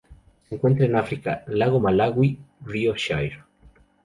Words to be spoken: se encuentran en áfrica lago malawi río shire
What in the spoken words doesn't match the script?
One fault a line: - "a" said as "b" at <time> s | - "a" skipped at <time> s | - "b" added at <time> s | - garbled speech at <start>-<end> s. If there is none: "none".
none